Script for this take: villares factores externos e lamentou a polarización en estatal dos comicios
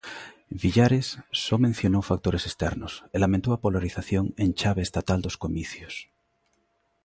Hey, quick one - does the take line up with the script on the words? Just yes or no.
no